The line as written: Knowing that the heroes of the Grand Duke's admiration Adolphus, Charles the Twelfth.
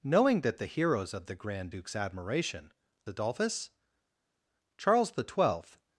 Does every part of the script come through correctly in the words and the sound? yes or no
yes